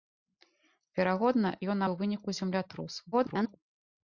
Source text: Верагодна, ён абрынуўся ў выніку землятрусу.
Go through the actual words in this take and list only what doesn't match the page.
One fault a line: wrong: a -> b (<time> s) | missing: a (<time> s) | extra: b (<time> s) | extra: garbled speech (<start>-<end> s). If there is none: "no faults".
missing: абрынуўся (1.8 s)
extra: garbled speech (3.1-3.6 s)